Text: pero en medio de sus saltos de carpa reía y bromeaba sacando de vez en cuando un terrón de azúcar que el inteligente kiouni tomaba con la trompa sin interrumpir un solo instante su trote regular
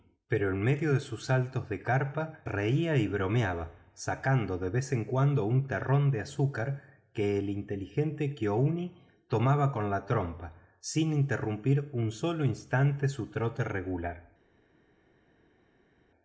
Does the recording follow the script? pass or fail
pass